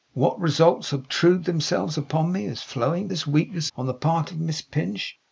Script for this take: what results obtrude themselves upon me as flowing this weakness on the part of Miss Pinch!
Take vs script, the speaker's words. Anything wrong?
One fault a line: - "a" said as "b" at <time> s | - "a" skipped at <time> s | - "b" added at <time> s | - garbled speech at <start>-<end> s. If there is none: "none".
none